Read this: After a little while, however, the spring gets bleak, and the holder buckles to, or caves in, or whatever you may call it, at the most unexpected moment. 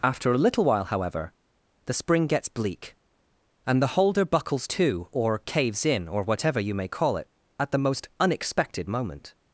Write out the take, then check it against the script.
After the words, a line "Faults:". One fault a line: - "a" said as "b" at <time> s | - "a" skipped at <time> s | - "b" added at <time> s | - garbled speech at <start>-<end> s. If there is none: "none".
After a little while, however, the spring gets bleak, and the holder buckles to, or caves in, or whatever you may call it, at the most unexpected moment.
Faults:
none